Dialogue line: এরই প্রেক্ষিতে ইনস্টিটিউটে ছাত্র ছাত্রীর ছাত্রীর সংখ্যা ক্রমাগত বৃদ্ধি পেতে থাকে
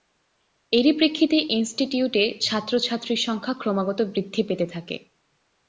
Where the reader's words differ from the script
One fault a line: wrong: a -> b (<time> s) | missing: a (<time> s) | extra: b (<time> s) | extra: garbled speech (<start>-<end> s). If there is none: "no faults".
missing: ছাত্রীর (3.2 s)